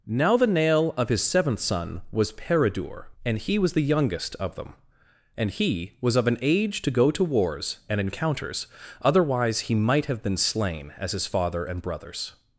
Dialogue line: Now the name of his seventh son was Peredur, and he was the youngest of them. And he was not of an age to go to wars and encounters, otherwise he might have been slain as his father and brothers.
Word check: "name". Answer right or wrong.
wrong